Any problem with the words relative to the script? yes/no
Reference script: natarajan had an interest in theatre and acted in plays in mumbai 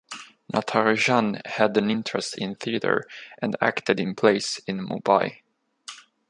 no